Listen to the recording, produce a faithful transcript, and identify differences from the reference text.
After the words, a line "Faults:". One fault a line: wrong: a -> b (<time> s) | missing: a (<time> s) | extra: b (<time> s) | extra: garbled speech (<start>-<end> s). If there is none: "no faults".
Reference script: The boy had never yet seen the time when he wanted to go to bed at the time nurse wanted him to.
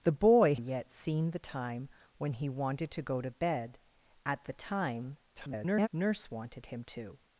The boy yet seen the time when he wanted to go to bed at the time [garbled] nurse wanted him to.
Faults:
missing: had never (0.6 s)
extra: garbled speech (5.4-5.9 s)